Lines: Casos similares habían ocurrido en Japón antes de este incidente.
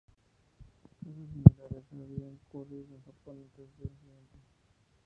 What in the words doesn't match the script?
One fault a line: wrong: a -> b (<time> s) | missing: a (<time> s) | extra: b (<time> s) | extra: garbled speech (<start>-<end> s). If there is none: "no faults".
missing: este (3.9 s)